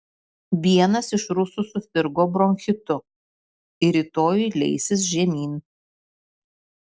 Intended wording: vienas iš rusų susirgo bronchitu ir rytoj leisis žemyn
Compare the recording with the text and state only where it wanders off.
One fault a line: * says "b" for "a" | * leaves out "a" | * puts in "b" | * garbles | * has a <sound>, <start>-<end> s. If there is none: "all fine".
all fine